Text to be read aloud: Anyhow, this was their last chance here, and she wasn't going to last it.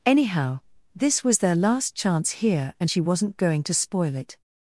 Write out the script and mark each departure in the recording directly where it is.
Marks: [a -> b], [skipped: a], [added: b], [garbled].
Anyhow, this was their last chance here, and she wasn't going to [last -> spoil] it.